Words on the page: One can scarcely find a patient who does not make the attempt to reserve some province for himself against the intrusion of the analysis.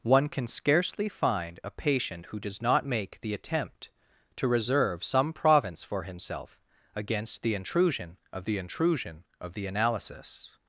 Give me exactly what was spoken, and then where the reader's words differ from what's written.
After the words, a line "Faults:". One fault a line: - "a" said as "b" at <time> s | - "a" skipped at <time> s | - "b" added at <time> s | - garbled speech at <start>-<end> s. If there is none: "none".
One can scarcely find a patient who does not make the attempt to reserve some province for himself against the intrusion of the intrusion of the analysis.
Faults:
- "intrusion of the" added at 8.6 s